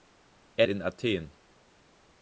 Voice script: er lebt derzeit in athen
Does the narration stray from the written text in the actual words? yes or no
yes